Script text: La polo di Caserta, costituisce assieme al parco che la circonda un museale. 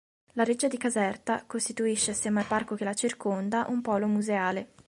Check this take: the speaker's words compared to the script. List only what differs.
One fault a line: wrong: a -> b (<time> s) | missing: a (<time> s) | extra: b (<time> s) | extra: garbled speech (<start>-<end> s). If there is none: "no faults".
wrong: polo -> reggia (0.4 s)
extra: polo (3.8 s)